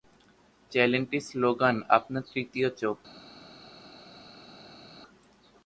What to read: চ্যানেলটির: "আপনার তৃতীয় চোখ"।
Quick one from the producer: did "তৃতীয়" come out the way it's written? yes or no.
yes